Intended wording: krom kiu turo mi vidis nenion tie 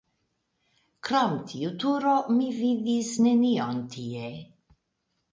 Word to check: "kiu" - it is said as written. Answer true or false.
false